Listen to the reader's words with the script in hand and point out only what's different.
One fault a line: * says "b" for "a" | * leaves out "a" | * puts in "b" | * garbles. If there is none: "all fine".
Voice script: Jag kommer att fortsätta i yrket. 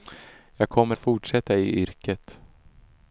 * leaves out "att"